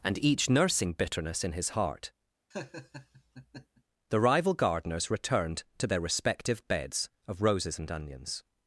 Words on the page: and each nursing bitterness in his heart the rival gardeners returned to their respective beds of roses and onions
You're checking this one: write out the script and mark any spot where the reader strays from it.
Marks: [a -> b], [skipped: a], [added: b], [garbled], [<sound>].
and each nursing bitterness in his heart [laugh] the rival gardeners returned to their respective beds of roses and onions